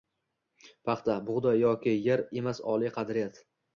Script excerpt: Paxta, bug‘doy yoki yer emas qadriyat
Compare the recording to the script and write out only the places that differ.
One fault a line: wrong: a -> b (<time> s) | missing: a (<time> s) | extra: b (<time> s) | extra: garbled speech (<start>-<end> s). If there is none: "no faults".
extra: oliy (2.8 s)